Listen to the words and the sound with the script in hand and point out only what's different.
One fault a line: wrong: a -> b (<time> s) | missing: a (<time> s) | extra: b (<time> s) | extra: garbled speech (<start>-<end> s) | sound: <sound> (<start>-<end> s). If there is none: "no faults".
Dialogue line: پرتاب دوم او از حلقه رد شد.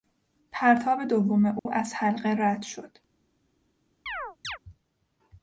sound: dropout (1.6-1.7 s)
sound: chirp (4.1-4.6 s)